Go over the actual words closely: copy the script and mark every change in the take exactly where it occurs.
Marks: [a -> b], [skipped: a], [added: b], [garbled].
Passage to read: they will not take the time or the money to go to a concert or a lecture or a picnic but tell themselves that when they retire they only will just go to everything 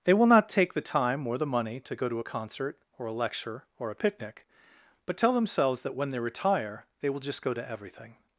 they will not take the time or the money to go to a concert or a lecture or a picnic but tell themselves that when they retire they [skipped: only] will just go to everything